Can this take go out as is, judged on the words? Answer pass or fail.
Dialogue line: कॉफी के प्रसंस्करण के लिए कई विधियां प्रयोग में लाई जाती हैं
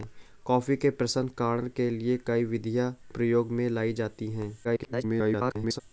fail